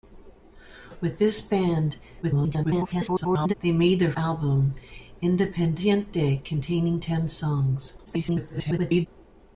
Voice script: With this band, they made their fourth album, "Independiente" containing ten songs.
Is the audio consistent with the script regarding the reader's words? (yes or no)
no